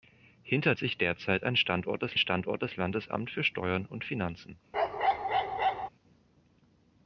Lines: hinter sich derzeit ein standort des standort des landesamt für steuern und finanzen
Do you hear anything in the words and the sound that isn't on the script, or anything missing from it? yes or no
yes